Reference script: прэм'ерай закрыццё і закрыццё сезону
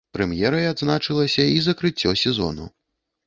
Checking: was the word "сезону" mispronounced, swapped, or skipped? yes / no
no